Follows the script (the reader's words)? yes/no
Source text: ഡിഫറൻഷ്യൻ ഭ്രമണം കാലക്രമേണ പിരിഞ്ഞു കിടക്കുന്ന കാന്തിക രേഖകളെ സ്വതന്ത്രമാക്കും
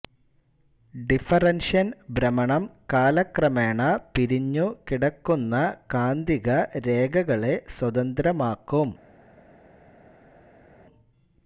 yes